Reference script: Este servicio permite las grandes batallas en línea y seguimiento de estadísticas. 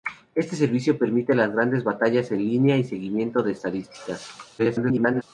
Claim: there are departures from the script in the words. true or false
true